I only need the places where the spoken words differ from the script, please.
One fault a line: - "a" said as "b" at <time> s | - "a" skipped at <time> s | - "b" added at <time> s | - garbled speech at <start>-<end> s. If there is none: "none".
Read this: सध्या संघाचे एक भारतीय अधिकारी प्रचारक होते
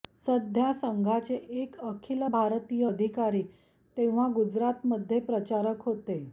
- "अखिल" added at 1.8 s
- "तेव्हा गुजरातमध्ये" added at 4.0 s